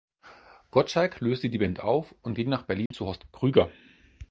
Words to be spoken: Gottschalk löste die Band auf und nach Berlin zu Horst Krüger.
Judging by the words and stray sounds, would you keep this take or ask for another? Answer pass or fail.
fail